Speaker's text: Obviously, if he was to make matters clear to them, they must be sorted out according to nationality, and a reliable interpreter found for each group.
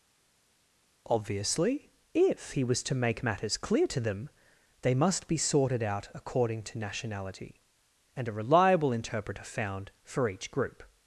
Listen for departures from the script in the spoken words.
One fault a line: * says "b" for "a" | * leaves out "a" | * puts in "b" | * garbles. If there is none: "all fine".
all fine